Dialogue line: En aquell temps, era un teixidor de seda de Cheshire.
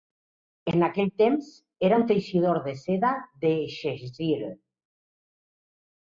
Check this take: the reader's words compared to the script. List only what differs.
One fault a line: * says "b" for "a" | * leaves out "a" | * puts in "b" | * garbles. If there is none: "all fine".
all fine